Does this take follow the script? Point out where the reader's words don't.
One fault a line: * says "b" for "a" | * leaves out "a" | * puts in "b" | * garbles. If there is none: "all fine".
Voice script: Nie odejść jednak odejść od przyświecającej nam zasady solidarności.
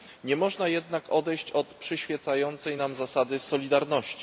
* says "można" for "odejść"